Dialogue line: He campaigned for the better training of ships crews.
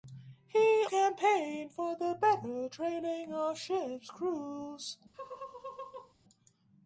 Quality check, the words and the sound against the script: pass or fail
fail